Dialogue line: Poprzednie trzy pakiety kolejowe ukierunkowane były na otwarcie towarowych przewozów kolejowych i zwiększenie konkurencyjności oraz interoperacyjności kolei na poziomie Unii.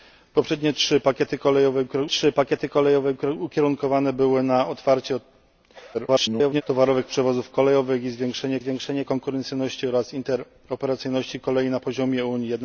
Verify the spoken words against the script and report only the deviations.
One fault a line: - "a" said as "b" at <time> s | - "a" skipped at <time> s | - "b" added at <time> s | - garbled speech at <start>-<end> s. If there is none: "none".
- "trzy pakiety kolejowe" added at 2.1 s
- garbled speech at 5.9-6.6 s
- "zwiększenie" added at 8.6 s